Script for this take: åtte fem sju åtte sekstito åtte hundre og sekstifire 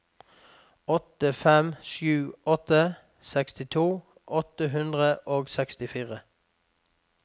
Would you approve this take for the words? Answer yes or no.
yes